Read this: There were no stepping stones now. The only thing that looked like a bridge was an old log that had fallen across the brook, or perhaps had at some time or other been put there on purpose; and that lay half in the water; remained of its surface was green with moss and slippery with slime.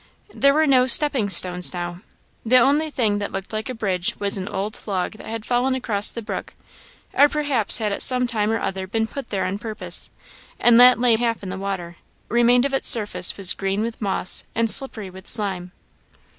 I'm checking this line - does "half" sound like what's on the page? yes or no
yes